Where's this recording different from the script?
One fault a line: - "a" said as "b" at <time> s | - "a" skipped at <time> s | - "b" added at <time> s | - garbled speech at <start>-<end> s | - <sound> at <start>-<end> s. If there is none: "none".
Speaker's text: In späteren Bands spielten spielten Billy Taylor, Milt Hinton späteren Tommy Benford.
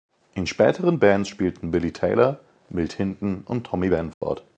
- "spielten" skipped at 1.7 s
- "späteren" said as "und" at 3.5 s
- dropout at 4.1-4.2 s